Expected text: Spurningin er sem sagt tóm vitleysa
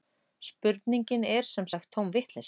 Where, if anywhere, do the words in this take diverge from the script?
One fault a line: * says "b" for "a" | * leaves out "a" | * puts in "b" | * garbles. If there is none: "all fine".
all fine